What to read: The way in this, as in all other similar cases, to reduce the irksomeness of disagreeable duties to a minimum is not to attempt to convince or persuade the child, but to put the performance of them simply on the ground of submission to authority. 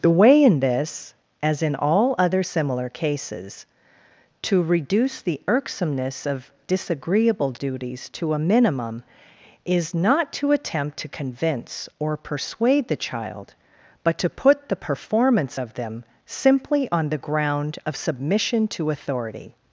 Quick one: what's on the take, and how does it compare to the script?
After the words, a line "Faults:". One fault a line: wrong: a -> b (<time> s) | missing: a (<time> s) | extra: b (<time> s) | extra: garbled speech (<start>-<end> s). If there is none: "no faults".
The way in this, as in all other similar cases, to reduce the irksomeness of disagreeable duties to a minimum is not to attempt to convince or persuade the child, but to put the performance of them simply on the ground of submission to authority.
Faults:
no faults